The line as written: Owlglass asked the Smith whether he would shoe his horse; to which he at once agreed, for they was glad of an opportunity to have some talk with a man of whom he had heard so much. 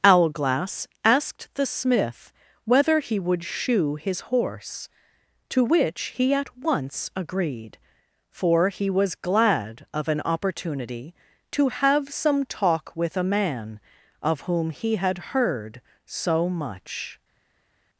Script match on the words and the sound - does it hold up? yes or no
no